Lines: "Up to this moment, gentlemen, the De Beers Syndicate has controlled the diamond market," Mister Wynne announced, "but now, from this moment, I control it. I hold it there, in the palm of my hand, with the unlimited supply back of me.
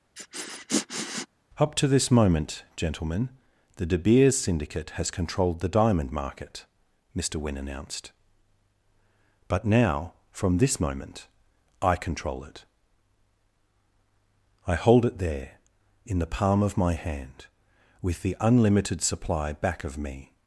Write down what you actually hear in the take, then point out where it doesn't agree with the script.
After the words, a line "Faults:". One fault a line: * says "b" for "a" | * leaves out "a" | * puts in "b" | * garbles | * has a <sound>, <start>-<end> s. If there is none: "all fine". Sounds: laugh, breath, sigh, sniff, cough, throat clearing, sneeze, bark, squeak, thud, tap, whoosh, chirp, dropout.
"Up to this moment, gentlemen, the De Beers Syndicate has controlled the diamond market," Mister Wynne announced, "but now, from this moment, I control it. I hold it there, in the palm of my hand, with the unlimited supply back of me.
Faults:
* has a sniff, 0.2-1.3 s